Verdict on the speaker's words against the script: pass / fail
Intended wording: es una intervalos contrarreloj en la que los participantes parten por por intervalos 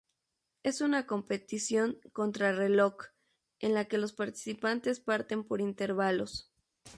fail